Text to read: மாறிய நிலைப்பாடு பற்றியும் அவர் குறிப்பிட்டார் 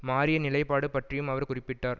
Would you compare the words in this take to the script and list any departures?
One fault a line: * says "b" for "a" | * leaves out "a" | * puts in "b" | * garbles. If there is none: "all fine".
all fine